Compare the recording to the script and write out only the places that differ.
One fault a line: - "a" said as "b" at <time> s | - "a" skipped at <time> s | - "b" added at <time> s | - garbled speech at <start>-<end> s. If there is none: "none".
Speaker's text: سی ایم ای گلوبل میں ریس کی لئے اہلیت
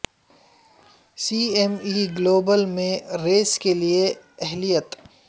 - "کی" said as "کے" at 3.6 s